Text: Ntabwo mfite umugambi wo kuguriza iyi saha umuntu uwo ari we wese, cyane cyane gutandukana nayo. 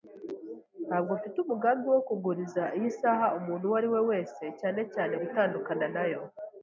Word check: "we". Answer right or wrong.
right